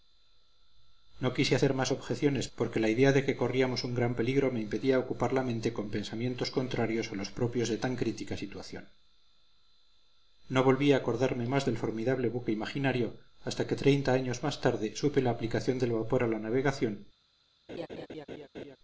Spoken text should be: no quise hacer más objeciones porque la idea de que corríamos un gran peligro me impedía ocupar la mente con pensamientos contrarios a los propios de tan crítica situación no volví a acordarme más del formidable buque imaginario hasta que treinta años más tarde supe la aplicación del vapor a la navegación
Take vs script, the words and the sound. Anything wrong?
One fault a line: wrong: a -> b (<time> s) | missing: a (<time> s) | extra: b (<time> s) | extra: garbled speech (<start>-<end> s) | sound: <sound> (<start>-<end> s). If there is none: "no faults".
sound: laugh (17.7-18.8 s)